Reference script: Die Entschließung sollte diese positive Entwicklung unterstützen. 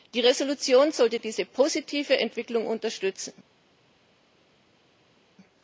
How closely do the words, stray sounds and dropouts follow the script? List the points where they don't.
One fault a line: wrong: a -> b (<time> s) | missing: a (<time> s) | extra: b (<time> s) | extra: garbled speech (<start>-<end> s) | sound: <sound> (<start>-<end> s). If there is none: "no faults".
no faults